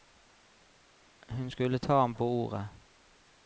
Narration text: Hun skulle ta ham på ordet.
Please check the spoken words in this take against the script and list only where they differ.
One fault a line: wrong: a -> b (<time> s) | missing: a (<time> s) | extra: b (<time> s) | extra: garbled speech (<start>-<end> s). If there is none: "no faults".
no faults